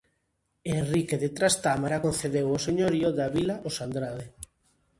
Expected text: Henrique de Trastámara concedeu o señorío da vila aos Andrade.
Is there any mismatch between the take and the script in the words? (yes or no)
no